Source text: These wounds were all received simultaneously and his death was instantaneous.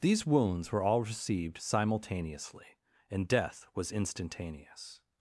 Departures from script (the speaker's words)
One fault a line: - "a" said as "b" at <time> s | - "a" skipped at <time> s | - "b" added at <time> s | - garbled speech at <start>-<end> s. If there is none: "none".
- "his" skipped at 3.3 s